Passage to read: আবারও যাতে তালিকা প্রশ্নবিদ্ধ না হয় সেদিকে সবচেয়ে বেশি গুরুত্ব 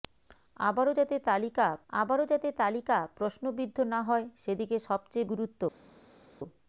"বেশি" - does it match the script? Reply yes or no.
no